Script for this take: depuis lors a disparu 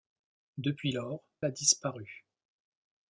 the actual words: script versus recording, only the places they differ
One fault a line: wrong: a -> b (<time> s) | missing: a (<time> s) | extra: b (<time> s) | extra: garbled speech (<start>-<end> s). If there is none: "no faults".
no faults